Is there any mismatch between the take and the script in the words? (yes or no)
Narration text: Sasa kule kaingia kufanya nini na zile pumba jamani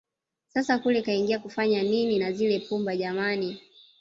no